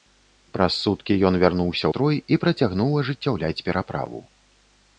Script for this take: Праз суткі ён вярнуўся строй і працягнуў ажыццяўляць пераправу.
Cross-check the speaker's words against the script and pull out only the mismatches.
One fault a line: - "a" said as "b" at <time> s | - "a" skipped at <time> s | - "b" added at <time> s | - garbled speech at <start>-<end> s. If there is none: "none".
none